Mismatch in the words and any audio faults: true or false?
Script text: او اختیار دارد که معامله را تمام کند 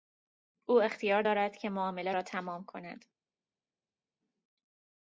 false